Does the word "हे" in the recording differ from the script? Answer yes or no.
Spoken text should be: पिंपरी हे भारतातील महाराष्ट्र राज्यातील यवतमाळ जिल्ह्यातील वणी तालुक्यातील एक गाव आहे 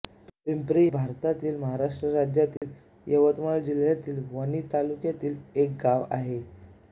yes